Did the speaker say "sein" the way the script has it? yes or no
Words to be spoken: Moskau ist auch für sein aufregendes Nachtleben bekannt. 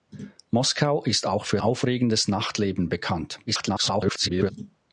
no